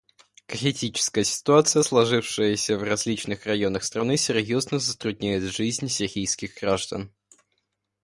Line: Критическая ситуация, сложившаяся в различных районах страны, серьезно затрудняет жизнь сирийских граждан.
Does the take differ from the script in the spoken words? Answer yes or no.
no